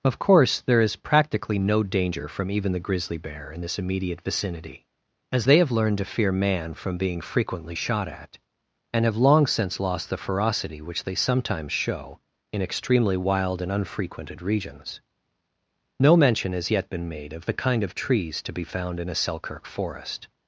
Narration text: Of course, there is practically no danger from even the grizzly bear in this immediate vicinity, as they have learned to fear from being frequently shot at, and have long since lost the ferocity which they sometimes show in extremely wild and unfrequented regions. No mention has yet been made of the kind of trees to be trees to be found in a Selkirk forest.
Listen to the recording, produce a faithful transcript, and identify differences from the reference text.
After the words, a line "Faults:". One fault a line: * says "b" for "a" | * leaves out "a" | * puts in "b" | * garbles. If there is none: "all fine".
Of course, there is practically no danger from even the grizzly bear in this immediate vicinity, as they have learned to fear man from being frequently shot at, and have long since lost the ferocity which they sometimes show in extremely wild and unfrequented regions. No mention has yet been made of the kind of trees to be found in a Selkirk forest.
Faults:
* puts in "man"
* leaves out "trees to be"